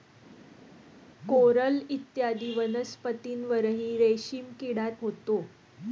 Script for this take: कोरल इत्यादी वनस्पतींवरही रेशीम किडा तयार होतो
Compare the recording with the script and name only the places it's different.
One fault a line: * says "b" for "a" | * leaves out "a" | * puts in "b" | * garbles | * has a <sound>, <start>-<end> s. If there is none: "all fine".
* leaves out "तयार"